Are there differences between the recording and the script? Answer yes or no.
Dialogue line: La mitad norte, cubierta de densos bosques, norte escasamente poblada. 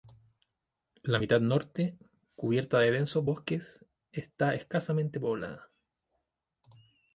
yes